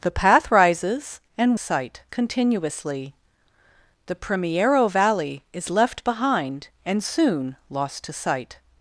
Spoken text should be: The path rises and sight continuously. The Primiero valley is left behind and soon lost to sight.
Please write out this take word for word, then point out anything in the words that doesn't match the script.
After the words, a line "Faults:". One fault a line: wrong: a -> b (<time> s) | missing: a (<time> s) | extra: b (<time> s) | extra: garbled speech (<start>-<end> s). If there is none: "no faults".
The path rises and sight continuously. The Primiero valley is left behind and soon lost to sight.
Faults:
no faults